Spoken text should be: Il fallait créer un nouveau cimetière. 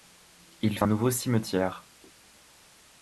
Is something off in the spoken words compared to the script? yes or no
yes